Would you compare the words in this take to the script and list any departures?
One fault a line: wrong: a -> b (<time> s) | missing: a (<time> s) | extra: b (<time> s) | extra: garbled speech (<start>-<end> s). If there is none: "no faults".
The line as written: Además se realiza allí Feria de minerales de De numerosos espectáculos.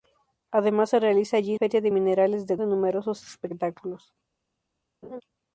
no faults